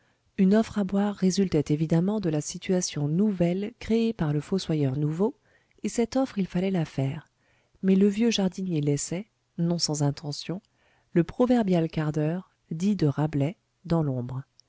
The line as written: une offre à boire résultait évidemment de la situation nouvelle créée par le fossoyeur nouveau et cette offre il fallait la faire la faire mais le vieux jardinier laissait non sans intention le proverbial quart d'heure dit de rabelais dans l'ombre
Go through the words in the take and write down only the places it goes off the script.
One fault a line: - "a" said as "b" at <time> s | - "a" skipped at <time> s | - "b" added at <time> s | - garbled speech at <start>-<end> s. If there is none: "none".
- "la faire" skipped at 7.3 s